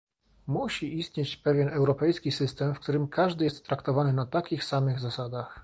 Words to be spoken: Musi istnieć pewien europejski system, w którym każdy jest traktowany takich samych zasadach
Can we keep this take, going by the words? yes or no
no